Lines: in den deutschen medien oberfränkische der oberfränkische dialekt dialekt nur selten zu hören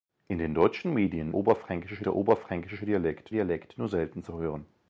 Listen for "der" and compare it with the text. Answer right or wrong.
right